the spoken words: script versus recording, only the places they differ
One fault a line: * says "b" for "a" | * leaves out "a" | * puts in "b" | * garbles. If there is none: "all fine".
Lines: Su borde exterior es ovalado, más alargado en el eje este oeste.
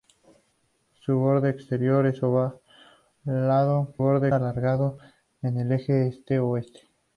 * says "borde" for "más"